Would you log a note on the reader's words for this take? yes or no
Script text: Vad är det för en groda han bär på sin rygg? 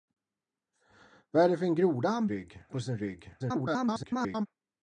yes